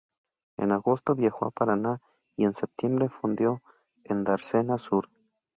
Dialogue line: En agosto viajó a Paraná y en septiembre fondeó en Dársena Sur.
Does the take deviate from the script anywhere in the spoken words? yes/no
no